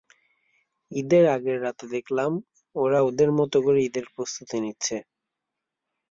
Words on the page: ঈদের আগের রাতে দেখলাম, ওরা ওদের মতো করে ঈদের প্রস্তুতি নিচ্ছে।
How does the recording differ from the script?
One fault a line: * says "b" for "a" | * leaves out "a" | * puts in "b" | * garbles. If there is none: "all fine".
all fine